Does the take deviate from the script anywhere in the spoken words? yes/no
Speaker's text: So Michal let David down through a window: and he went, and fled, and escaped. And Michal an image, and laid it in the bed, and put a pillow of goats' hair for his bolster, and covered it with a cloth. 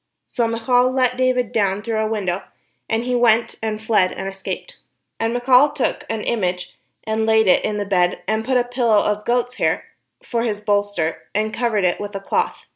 yes